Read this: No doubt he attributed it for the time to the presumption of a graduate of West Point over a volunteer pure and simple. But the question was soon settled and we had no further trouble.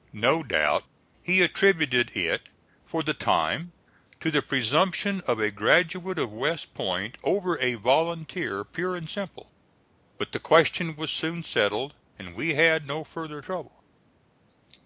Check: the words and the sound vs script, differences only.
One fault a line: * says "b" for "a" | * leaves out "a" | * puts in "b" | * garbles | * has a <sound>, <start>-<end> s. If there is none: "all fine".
all fine